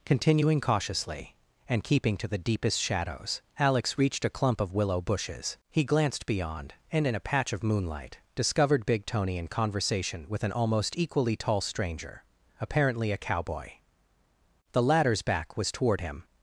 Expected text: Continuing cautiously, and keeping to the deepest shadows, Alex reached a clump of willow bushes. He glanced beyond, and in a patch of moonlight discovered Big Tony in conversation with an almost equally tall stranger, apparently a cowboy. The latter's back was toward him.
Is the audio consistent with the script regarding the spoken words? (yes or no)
yes